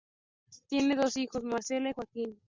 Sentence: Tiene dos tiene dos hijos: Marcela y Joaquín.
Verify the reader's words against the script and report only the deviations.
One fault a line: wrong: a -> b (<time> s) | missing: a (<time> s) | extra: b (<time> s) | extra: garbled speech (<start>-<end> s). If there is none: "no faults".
missing: tiene dos (1.2 s)